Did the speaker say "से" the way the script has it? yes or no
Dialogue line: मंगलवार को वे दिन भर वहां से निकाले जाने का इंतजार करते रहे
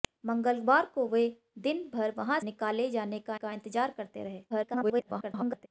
no